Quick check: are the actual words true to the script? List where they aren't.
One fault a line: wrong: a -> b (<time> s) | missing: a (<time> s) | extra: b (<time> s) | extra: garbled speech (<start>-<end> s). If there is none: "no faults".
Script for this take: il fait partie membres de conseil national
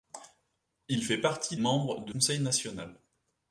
no faults